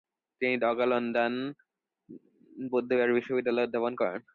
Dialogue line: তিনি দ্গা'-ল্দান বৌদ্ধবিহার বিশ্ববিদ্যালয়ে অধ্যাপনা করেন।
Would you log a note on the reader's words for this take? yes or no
yes